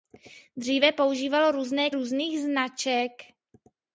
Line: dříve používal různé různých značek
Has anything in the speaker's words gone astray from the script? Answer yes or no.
no